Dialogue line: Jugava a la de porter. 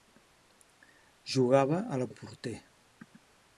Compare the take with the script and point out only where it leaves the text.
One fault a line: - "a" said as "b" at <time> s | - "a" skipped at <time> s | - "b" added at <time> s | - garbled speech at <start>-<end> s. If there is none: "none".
none